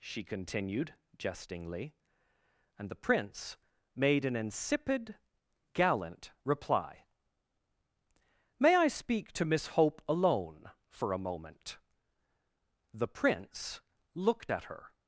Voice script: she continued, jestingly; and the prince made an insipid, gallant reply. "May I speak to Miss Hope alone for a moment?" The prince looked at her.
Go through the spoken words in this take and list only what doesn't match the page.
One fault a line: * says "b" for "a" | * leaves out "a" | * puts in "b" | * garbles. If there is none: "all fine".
all fine